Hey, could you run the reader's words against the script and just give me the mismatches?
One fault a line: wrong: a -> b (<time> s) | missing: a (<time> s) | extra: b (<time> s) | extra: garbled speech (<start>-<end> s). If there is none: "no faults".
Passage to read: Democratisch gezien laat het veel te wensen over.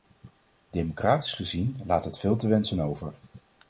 no faults